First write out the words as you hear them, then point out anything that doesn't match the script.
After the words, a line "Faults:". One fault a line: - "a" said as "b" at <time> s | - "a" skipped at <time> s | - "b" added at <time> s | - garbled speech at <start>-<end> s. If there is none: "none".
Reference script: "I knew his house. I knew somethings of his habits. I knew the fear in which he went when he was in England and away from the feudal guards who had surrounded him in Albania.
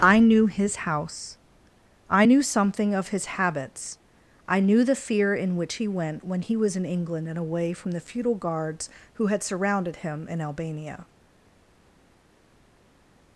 "I knew his house. I knew something of his habits. I knew the fear in which he went when he was in England and away from the feudal guards who had surrounded him in Albania.
Faults:
- "somethings" said as "something" at 2.4 s